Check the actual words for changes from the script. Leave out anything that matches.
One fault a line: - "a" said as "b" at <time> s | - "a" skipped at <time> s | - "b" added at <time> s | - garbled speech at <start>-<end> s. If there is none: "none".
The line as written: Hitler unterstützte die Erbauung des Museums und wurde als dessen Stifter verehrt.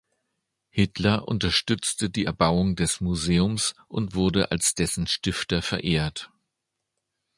none